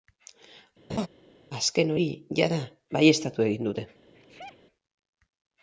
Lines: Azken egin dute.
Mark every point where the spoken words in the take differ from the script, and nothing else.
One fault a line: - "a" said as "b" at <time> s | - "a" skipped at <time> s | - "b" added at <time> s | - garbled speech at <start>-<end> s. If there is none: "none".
- "hori jada baieztatu" added at 1.9 s